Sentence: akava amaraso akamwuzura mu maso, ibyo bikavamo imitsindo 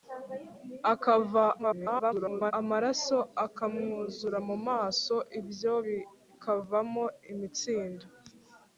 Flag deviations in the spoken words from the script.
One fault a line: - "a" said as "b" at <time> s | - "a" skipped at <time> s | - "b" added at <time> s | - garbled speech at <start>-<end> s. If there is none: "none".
- garbled speech at 1.6-2.5 s